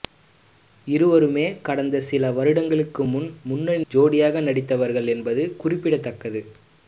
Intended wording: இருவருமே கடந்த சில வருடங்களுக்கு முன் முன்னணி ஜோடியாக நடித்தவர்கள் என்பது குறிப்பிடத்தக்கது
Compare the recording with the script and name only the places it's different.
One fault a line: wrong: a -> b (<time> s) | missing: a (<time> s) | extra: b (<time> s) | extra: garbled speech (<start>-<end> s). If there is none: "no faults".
no faults